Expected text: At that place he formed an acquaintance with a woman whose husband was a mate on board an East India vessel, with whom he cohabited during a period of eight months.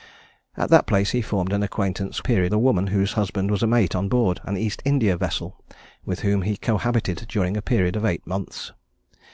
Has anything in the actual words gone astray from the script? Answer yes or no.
yes